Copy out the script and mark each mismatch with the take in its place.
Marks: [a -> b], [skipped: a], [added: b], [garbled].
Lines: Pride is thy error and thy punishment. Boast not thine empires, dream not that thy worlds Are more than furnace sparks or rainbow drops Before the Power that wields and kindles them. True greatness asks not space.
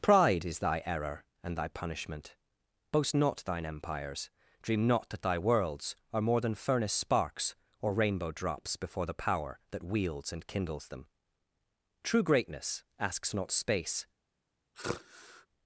Pride is thy error and thy punishment. Boast not thine empires, dream not that thy worlds Are more than furnace sparks or rainbow drops Before the Power that wields and kindles them. True greatness asks not space.